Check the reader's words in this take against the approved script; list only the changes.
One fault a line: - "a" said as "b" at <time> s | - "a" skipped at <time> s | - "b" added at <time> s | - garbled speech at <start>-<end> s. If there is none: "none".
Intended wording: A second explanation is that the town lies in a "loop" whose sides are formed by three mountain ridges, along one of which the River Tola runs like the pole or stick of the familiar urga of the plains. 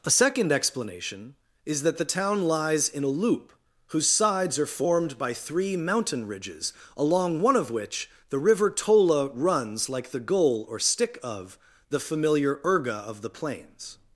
- "pole" said as "goal" at 10.2 s